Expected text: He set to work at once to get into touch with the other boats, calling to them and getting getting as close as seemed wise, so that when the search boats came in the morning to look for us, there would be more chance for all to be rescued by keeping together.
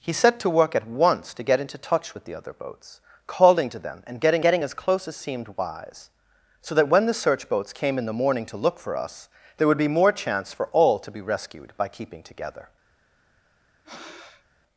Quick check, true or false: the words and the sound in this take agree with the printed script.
false